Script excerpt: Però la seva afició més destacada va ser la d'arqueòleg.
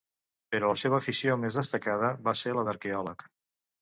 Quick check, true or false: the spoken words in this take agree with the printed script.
true